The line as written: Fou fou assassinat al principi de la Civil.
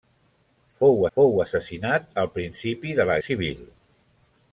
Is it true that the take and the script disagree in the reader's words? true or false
false